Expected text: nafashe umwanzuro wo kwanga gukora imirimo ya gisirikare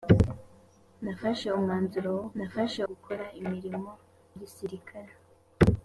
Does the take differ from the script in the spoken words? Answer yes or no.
yes